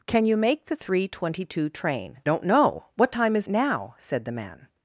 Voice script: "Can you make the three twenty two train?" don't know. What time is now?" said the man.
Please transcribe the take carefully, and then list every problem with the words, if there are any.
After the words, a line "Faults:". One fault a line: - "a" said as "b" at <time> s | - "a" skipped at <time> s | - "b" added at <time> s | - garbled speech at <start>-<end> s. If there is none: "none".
"Can you make the three twenty two train?" don't know. What time is now?" said the man.
Faults:
none